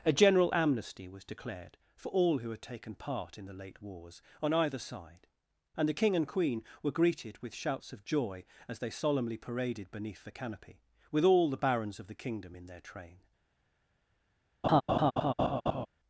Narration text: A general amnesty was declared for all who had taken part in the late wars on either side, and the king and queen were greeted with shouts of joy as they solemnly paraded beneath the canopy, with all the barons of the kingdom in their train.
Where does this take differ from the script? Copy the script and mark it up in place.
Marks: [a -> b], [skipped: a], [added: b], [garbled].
A general amnesty was declared for all who had taken part in the late wars on either side, and the king and queen were greeted with shouts of joy as they solemnly paraded beneath the canopy, with all the barons of the kingdom in their train.